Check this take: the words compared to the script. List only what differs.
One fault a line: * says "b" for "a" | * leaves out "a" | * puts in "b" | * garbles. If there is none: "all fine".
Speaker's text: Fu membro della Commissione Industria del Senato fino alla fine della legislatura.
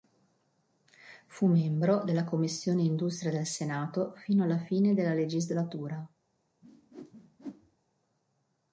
all fine